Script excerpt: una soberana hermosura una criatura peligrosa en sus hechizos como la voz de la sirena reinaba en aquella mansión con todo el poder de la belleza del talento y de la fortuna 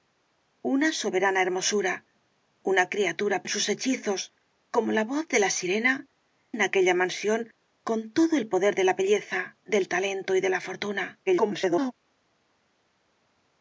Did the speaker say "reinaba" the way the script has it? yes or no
no